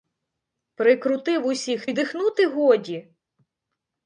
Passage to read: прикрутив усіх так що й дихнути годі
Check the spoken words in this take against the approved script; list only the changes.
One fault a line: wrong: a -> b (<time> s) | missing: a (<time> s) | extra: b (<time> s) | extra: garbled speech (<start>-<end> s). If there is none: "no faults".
missing: так що (1.9 s)